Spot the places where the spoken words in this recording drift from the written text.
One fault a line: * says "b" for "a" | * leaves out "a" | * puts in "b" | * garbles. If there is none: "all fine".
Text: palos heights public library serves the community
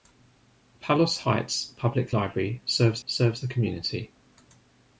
* puts in "serves"